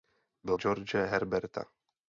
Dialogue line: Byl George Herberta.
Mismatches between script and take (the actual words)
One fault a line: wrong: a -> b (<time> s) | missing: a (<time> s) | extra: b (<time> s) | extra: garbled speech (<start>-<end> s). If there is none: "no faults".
no faults